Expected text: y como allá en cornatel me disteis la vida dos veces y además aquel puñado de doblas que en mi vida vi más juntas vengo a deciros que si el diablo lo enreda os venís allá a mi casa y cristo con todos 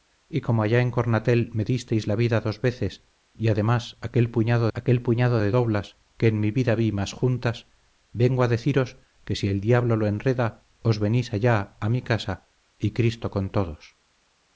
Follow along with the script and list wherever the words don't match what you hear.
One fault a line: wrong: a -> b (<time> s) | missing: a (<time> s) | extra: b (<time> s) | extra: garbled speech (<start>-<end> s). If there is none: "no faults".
extra: aquel puñado (4.7 s)